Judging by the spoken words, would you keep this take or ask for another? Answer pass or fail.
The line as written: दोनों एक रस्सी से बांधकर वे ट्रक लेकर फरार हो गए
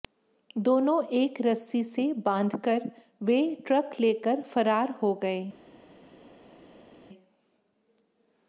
pass